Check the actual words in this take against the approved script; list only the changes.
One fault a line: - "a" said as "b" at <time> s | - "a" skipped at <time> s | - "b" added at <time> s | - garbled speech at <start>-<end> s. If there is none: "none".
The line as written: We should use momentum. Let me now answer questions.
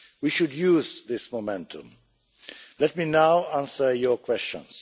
- "this" added at 1.1 s
- "your" added at 3.9 s